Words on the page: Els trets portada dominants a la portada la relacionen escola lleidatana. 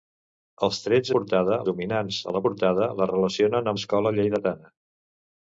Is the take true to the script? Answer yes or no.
yes